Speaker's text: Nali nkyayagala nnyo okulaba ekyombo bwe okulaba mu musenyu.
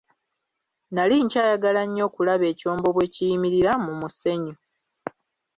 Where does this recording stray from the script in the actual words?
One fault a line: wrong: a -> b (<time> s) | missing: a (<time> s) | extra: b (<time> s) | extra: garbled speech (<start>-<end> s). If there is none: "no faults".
wrong: okulaba -> kiyimirira (3.1 s)